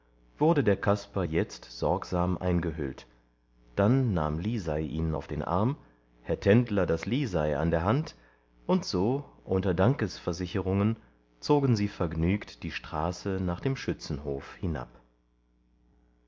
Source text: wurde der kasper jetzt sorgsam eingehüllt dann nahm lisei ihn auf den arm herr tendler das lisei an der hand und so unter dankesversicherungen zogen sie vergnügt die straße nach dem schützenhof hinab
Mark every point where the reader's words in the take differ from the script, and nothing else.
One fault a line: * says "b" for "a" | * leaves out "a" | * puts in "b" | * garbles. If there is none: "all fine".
all fine